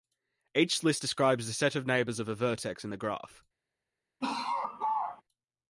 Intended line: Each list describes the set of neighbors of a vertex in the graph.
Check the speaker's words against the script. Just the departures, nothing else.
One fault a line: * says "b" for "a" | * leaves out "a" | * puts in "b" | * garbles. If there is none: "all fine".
all fine